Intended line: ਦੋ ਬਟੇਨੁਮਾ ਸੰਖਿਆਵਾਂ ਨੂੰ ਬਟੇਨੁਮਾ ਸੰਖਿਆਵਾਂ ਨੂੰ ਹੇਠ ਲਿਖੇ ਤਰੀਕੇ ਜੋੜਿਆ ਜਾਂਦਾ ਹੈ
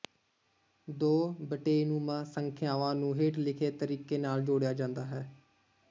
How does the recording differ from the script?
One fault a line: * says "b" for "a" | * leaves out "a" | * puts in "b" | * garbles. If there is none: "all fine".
* leaves out "ਬਟੇਨੁਮਾ ਸੰਖਿਆਵਾਂ ਨੂੰ"
* puts in "ਨਾਲ"